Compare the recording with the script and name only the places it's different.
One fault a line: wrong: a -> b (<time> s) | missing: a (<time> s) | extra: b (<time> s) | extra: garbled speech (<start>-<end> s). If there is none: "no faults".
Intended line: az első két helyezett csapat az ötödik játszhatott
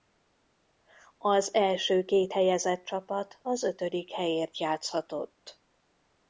extra: helyért (4.1 s)